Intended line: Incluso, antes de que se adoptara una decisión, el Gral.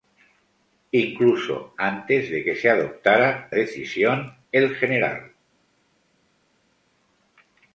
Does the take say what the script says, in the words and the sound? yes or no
no